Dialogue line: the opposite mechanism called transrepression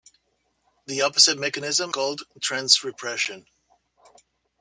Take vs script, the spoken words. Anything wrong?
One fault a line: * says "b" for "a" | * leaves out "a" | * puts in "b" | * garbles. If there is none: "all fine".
all fine